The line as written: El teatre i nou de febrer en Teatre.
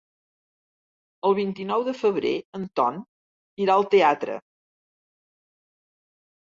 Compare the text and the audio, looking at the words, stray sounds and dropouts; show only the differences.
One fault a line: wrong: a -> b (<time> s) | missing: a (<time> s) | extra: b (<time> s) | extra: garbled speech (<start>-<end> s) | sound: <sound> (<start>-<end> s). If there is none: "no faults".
wrong: teatre -> vint (1.4 s)
extra: Ton irà al (2.8 s)